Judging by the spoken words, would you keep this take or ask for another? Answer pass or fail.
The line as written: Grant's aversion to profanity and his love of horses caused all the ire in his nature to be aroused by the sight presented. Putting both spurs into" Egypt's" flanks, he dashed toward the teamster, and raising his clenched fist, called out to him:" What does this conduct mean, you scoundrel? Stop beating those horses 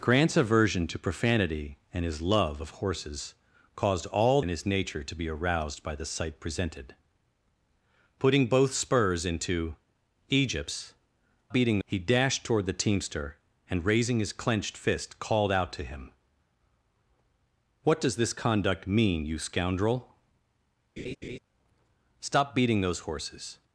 fail